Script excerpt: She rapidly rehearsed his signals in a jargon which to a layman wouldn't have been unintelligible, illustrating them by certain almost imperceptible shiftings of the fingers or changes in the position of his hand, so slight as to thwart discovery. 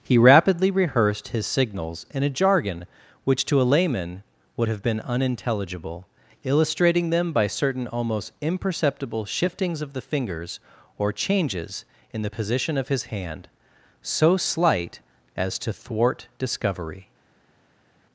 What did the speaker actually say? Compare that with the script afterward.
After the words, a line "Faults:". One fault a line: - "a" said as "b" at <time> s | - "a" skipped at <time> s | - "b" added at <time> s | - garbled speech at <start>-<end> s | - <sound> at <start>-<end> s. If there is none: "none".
He rapidly rehearsed his signals in a jargon which to a layman would have been unintelligible, illustrating them by certain almost imperceptible shiftings of the fingers or changes in the position of his hand, so slight as to thwart discovery.
Faults:
- "She" said as "He" at 0.0 s
- "wouldn't" said as "would" at 4.6 s